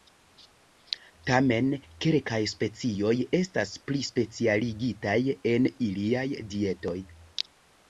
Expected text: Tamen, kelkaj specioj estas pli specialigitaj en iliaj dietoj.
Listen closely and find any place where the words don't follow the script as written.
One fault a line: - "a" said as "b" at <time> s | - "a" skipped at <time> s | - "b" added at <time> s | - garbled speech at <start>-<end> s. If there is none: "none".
none